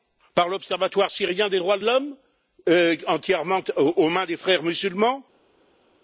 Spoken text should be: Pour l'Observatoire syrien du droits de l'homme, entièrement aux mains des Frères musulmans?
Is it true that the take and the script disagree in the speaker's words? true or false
true